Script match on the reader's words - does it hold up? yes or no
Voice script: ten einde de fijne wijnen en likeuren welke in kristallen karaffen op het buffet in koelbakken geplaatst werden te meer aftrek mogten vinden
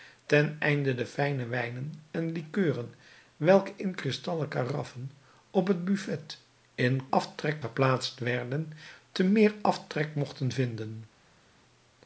no